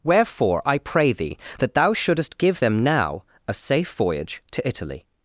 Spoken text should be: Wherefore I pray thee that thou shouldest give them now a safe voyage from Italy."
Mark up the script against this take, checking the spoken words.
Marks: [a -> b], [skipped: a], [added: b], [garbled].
Wherefore I pray thee that thou shouldest give them now a safe voyage [from -> to] Italy."